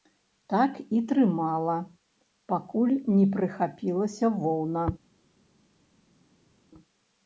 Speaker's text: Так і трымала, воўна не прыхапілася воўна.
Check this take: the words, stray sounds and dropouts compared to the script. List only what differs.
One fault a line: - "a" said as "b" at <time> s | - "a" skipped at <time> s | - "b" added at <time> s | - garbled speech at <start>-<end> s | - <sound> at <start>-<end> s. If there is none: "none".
- "воўна" said as "пакуль" at 2.5 s